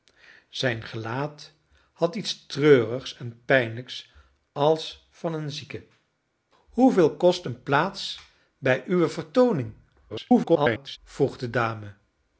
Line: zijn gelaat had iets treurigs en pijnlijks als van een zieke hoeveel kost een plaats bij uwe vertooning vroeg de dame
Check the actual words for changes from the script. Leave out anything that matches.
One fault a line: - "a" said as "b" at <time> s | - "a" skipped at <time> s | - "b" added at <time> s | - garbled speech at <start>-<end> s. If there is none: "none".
- garbled speech at 10.1-11.0 s